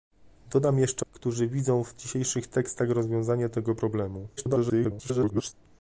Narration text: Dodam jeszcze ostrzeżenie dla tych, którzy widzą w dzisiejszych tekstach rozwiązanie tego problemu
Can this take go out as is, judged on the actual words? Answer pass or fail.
fail